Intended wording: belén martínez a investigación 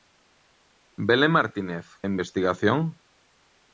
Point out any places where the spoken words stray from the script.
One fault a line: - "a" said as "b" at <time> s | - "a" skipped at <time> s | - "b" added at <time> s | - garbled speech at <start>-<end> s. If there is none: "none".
none